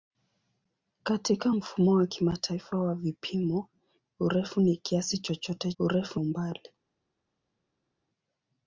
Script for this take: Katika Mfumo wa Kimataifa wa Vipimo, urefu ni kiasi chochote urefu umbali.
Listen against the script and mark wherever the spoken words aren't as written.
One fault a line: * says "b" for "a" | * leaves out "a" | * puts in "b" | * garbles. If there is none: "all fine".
all fine